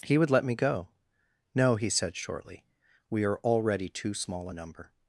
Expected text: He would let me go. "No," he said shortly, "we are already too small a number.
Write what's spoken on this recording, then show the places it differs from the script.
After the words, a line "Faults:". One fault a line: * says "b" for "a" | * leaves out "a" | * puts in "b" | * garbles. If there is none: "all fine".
He would let me go. "No," he said shortly, "we are already too small a number.
Faults:
all fine